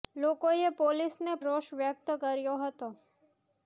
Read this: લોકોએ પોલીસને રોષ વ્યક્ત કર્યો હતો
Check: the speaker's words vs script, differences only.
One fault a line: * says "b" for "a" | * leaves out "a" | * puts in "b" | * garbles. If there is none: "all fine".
all fine